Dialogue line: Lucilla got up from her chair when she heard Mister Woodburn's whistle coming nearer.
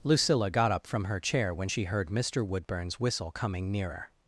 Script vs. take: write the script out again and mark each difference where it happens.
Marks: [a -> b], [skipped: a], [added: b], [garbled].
Lucilla got up from her chair when she heard Mister Woodburn's whistle coming nearer.